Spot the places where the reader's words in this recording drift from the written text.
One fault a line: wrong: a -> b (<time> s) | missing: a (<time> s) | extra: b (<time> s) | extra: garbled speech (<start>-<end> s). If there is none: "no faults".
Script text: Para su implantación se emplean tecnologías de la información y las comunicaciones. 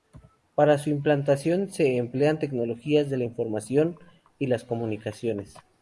no faults